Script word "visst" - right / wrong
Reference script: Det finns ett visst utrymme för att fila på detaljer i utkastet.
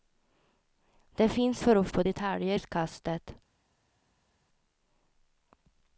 wrong